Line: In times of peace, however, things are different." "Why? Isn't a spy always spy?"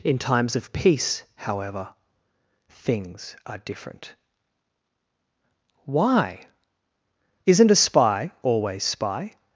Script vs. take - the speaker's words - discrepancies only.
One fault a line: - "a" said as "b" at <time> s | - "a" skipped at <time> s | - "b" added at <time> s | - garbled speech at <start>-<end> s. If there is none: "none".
none